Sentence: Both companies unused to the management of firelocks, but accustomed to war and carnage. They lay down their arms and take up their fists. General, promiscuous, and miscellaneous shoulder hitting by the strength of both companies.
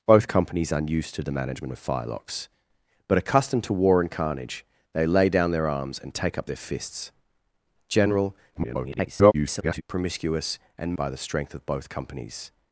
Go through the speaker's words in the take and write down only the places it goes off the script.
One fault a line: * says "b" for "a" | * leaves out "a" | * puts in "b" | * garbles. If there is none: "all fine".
* garbles
* leaves out "miscellaneous shoulder hitting"